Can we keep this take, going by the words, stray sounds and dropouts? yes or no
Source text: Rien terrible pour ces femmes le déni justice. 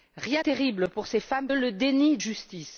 yes